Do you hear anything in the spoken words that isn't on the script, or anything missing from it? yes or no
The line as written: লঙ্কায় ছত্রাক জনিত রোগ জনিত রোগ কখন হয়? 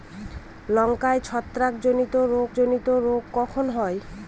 no